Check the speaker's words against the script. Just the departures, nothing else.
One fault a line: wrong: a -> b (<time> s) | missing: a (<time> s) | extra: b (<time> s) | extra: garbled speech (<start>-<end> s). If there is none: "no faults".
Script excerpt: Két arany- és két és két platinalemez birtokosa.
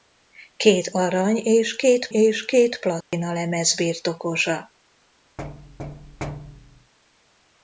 no faults